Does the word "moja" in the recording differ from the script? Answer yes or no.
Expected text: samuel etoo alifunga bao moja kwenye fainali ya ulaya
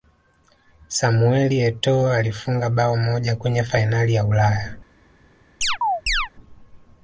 no